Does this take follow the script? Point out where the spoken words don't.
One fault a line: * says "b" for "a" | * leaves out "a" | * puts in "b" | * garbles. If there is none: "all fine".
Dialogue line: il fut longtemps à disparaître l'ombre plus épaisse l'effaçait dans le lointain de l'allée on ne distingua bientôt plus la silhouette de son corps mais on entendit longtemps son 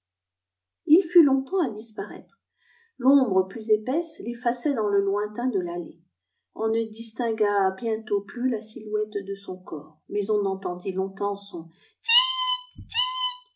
all fine